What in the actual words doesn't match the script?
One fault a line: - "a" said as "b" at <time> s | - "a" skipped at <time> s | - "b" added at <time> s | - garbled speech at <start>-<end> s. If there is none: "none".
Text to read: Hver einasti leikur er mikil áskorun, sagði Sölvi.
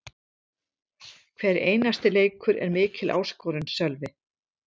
- "sagði" skipped at 3.7 s